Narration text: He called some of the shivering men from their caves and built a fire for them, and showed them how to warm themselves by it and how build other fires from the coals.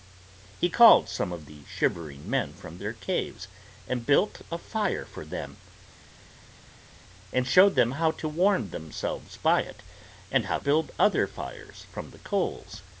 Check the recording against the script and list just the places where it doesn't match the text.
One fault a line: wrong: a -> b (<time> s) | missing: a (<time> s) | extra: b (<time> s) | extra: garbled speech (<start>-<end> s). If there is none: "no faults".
no faults